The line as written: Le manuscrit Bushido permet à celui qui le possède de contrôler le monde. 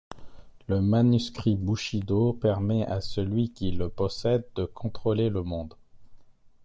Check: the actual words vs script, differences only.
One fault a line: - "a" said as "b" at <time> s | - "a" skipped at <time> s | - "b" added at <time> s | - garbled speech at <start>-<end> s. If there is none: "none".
none